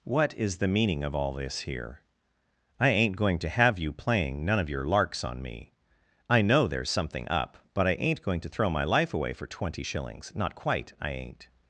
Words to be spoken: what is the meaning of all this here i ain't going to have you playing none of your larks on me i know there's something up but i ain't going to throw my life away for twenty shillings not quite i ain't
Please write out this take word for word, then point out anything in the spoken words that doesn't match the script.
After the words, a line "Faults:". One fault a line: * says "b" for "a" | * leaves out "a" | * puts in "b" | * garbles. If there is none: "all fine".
what is the meaning of all this here i ain't going to have you playing none of your larks on me i know there's something up but i ain't going to throw my life away for twenty shillings not quite i ain't
Faults:
all fine